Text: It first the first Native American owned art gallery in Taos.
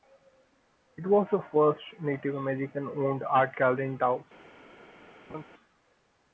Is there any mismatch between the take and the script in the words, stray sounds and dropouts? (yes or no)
yes